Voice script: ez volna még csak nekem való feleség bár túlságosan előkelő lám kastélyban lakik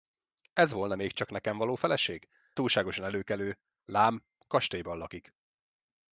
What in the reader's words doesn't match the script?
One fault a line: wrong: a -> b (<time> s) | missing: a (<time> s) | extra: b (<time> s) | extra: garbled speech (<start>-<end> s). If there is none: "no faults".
missing: bár (2.3 s)